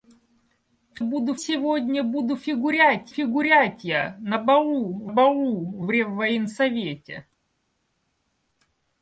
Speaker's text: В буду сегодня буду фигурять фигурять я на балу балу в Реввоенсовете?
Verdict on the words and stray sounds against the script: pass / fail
pass